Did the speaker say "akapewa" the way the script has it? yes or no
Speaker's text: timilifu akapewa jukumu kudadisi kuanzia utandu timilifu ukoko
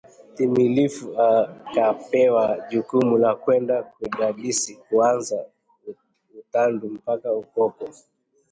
yes